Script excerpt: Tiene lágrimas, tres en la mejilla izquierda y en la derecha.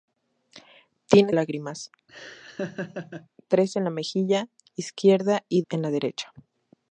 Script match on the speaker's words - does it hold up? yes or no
yes